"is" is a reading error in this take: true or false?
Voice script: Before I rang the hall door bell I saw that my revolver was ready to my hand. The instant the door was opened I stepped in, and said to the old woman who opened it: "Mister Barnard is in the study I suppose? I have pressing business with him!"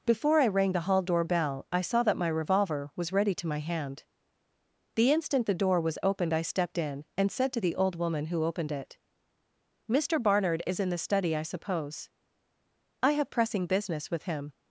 false